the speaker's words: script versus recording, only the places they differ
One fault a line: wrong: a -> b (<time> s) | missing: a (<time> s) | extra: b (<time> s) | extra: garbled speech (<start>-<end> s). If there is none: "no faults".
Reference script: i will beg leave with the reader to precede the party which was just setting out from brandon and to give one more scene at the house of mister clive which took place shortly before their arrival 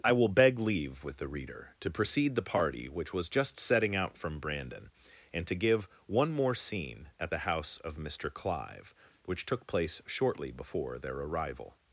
no faults